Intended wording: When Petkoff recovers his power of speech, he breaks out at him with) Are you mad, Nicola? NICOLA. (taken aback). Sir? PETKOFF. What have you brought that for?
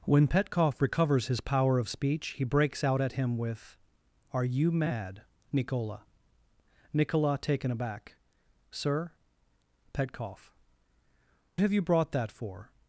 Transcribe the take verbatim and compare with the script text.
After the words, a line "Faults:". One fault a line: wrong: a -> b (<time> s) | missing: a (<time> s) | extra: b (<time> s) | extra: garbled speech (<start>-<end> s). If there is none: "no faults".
When Petkoff recovers his power of speech, he breaks out at him with) Are you mad, Nicola? NICOLA. (taken aback). Sir? PETKOFF. Have you brought that for?
Faults:
missing: What (10.5 s)